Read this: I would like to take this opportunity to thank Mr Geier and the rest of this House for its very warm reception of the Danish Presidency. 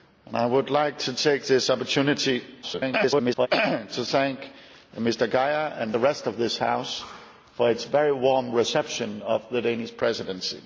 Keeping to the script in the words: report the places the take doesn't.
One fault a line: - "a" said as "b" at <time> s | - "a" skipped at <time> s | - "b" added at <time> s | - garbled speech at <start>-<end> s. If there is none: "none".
- garbled speech at 2.6-3.5 s